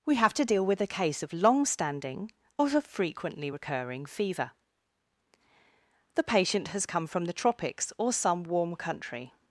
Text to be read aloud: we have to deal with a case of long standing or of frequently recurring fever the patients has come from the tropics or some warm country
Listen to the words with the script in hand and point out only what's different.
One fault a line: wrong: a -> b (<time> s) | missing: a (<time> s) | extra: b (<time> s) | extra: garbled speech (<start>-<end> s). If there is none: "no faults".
wrong: patients -> patient (6.2 s)